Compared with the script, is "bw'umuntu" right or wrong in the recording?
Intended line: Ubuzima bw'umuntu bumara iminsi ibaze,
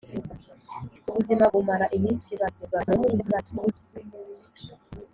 wrong